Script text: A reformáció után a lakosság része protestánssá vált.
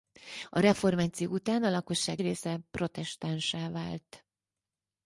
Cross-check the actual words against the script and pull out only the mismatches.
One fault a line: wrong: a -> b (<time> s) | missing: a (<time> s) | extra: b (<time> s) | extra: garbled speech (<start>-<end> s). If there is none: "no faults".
no faults